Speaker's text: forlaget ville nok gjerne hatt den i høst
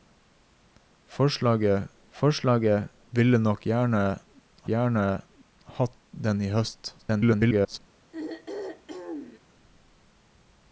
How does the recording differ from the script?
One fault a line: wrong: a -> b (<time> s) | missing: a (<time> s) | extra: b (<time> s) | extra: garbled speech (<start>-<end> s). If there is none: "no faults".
extra: forlaget (2.1 s)
extra: gjerne (4.7 s)
extra: garbled speech (7.0-7.8 s)